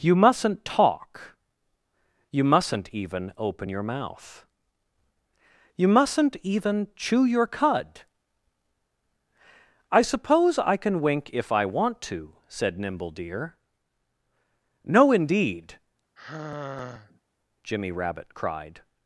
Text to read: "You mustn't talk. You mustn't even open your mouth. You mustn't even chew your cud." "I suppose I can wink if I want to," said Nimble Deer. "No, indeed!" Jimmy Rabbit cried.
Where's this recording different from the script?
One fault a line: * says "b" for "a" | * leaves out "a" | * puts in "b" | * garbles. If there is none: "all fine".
all fine